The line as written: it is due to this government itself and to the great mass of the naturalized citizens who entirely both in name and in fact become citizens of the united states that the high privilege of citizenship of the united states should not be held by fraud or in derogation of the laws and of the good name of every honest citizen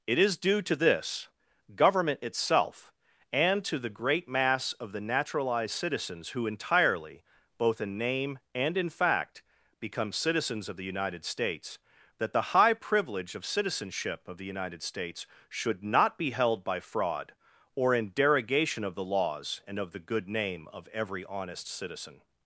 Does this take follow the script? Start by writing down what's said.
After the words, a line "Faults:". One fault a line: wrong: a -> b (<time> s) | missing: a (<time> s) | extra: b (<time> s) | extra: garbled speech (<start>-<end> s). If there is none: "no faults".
it is due to this government itself and to the great mass of the naturalized citizens who entirely both in name and in fact become citizens of the united states that the high privilege of citizenship of the united states should not be held by fraud or in derogation of the laws and of the good name of every honest citizen
Faults:
no faults